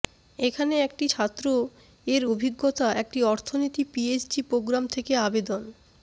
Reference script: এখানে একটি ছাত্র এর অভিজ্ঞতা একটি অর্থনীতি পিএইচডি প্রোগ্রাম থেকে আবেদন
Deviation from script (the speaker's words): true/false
false